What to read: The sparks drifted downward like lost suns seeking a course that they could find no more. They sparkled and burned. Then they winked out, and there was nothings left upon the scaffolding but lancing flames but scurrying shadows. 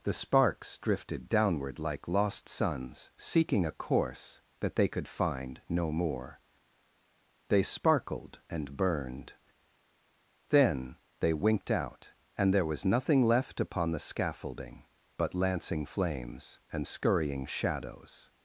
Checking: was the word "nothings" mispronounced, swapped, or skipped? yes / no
yes